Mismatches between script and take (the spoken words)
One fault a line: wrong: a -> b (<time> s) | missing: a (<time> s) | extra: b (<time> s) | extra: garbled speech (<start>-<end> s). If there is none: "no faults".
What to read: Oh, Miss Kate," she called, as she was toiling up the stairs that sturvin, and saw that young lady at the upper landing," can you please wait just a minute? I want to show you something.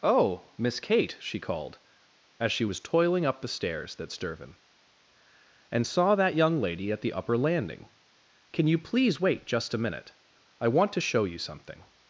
no faults